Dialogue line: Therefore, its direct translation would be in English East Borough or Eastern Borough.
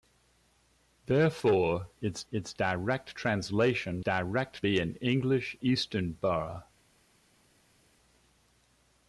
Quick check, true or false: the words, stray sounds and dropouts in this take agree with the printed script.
false